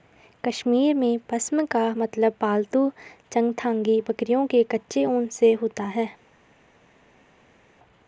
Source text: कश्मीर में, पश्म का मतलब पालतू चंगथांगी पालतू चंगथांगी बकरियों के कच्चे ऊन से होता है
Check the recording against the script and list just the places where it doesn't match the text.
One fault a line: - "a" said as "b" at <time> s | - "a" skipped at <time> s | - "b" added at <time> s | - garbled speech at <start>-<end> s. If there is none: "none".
- "पालतू चंगथांगी" skipped at 4.0 s